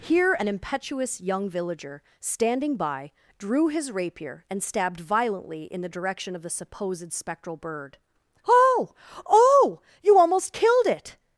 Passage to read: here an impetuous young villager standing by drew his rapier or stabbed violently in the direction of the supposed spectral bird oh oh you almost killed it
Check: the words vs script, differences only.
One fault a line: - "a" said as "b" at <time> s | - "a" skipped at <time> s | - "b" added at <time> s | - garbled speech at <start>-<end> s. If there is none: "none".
- "or" said as "and" at 4.5 s